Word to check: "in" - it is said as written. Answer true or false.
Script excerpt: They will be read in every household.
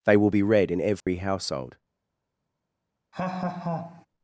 true